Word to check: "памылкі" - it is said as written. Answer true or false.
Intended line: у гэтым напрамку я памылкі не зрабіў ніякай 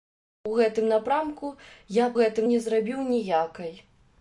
false